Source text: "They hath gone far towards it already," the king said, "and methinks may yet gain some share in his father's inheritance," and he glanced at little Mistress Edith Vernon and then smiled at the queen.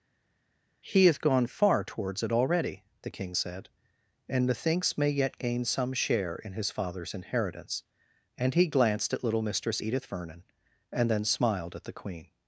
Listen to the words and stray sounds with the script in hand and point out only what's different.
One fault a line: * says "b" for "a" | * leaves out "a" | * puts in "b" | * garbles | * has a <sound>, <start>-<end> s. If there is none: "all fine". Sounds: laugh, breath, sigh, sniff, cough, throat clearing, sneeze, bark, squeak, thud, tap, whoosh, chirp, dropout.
* says "He" for "They"